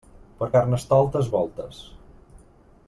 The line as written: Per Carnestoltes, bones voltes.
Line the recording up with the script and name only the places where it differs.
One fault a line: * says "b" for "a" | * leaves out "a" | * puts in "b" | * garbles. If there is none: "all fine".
* leaves out "bones"